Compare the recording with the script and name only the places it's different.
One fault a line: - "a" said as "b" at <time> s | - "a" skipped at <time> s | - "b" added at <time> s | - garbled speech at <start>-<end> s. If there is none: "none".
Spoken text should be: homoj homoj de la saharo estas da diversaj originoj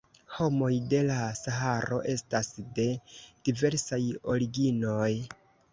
- "homoj" skipped at 0.7 s
- "da" said as "de" at 2.8 s